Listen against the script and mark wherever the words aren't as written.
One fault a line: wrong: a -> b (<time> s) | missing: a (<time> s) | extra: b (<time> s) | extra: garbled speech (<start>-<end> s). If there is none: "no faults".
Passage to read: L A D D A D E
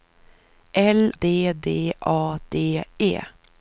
missing: A (1.1 s)